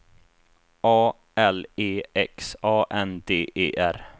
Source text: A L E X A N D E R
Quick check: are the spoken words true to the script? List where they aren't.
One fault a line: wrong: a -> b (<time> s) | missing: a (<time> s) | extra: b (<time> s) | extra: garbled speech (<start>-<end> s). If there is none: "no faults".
no faults